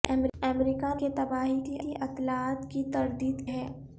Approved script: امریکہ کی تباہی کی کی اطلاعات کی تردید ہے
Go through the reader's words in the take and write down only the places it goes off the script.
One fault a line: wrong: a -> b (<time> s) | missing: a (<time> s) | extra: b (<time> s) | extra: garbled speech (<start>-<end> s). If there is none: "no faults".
no faults